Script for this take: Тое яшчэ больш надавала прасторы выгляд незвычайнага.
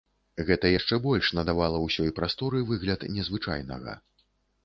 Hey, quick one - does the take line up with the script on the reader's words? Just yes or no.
no